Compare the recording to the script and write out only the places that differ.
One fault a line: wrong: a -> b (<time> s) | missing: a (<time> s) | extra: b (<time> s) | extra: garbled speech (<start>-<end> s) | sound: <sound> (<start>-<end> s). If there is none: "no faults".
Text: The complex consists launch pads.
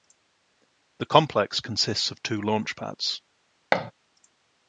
extra: of two (2.1 s)
sound: thud (3.7-3.9 s)